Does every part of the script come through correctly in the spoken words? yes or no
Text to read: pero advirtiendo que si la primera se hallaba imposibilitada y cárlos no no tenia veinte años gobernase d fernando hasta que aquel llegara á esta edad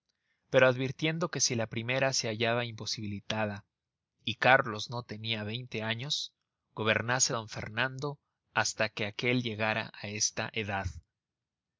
no